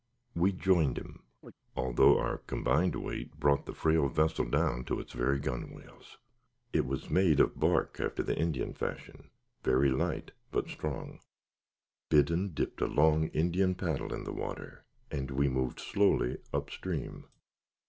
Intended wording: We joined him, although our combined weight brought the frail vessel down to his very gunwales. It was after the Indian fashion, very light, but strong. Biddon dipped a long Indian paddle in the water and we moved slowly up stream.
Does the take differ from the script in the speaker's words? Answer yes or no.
yes